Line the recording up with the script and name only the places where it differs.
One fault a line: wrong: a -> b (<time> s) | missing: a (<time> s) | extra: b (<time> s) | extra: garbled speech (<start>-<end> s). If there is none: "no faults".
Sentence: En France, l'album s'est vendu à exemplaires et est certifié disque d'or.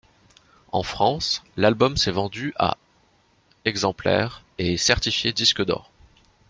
no faults